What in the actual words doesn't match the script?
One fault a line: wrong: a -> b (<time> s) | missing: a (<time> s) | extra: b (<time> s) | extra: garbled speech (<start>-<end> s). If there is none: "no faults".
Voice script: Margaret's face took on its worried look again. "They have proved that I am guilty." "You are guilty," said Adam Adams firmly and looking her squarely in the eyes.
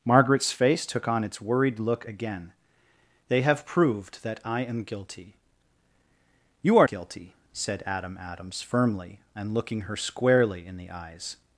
no faults